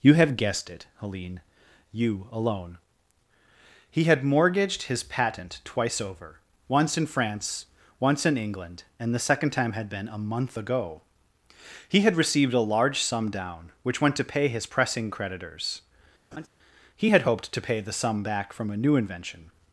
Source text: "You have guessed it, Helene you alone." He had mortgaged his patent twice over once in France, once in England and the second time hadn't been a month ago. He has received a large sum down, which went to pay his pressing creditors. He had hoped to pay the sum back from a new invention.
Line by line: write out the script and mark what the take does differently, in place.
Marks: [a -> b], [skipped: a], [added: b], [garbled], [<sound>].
"You have guessed it, Helene you alone." He had mortgaged his patent twice over once in France, once in England and the second time [hadn't -> had] been a month ago. He [has -> had] received a large sum down, which went to pay his pressing creditors. [laugh] He had hoped to pay the sum back from a new invention.